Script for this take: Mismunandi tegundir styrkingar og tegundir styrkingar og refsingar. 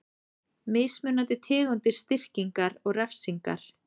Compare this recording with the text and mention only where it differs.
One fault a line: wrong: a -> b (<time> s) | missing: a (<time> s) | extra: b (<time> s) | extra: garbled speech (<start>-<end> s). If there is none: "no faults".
missing: tegundir styrkingar og (3.0 s)